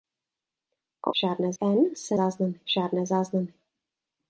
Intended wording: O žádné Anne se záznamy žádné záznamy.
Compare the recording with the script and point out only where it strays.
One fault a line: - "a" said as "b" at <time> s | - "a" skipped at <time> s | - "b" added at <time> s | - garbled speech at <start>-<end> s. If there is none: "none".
none